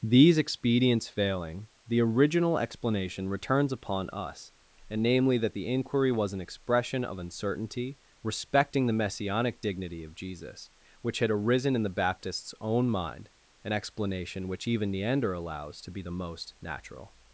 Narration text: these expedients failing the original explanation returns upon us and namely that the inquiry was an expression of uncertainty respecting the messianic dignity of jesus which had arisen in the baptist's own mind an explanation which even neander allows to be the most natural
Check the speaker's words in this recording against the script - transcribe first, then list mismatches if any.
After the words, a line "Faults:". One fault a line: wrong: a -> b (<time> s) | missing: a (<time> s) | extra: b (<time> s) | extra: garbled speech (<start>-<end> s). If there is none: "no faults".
these expedients failing the original explanation returns upon us and namely that the inquiry was an expression of uncertainty respecting the messianic dignity of jesus which had arisen in the baptist's own mind an explanation which even neander allows to be the most natural
Faults:
no faults